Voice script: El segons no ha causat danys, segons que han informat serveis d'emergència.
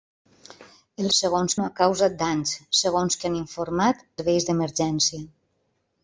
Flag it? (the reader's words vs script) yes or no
no